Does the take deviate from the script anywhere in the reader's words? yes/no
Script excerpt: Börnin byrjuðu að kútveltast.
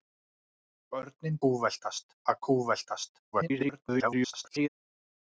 yes